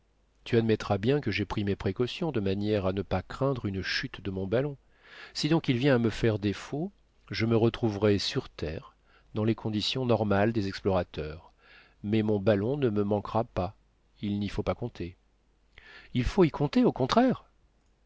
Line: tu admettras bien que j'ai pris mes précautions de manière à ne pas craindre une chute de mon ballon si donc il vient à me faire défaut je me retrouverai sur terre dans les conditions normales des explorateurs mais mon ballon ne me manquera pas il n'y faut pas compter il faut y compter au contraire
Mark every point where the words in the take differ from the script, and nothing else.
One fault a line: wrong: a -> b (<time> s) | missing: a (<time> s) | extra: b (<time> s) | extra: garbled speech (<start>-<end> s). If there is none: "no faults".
no faults